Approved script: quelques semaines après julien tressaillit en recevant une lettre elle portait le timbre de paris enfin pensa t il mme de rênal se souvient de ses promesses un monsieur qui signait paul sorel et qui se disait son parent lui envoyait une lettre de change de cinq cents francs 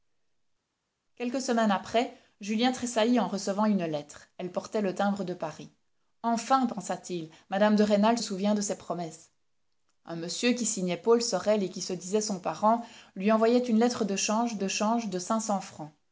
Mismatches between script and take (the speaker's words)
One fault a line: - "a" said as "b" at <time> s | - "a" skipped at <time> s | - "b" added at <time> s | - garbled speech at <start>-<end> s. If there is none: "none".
- "se" skipped at 8.2 s
- "change de" added at 14.7 s